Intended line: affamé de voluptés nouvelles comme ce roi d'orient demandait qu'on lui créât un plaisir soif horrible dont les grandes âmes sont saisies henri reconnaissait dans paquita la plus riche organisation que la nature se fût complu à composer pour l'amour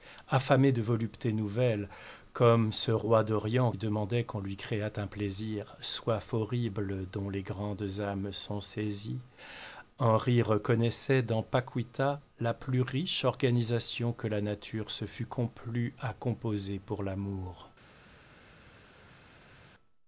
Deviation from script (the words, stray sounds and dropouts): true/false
false